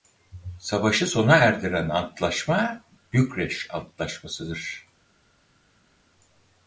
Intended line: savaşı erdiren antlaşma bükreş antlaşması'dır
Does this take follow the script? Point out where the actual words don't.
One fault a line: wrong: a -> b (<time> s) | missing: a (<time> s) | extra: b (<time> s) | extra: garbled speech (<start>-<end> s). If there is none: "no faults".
extra: sona (1.1 s)